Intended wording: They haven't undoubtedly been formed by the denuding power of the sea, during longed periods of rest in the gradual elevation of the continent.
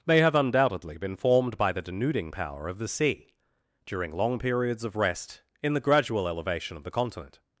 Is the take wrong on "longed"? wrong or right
wrong